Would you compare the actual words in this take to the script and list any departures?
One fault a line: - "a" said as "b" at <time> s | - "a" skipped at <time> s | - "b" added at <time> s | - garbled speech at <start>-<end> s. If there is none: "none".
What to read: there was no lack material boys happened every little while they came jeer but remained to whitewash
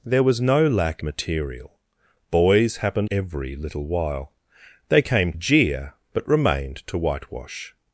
none